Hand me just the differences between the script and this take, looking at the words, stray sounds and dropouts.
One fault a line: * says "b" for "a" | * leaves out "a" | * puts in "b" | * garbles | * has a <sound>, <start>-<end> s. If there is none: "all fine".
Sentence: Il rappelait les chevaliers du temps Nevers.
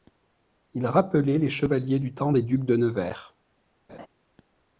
* puts in "des ducs de"
* has a laugh, 3.9-4.1 s